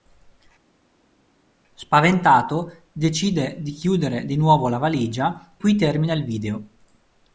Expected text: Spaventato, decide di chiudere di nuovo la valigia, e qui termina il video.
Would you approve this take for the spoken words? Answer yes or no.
no